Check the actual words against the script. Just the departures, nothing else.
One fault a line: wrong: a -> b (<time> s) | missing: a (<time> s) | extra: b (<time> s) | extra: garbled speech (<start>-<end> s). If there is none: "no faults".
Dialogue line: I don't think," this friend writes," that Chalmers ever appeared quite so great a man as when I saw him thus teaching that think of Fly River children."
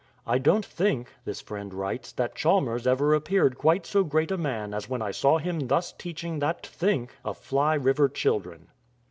no faults